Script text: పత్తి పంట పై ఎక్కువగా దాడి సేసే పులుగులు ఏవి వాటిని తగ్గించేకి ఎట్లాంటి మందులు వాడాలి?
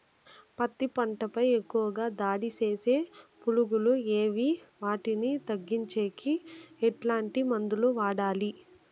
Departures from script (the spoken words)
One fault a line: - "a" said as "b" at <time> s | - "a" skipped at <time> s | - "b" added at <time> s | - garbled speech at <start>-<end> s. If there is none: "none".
none